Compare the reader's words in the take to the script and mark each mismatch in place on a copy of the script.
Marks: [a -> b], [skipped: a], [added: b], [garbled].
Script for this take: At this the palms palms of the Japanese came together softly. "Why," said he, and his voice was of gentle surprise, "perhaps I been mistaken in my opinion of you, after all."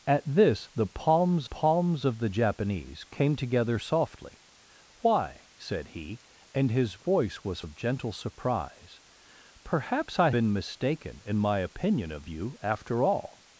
At this the palms palms of the Japanese came together softly. "Why," said he, and his voice was of gentle surprise, "perhaps I been mistaken in my opinion of you, after all."